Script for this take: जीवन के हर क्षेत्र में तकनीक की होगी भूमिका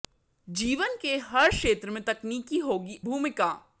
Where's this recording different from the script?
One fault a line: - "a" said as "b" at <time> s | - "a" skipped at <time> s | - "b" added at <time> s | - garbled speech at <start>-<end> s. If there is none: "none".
none